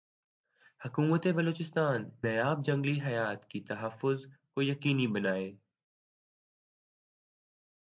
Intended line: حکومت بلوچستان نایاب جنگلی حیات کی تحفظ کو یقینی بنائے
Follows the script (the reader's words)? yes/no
yes